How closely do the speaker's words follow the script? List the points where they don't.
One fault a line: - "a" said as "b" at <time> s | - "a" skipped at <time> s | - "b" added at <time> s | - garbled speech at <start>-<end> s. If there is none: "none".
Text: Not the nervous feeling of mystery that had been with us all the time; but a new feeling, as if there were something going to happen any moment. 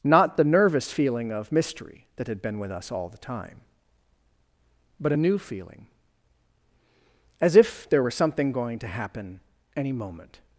none